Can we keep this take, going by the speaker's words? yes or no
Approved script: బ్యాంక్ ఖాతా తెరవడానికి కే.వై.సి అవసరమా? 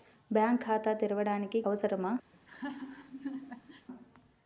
no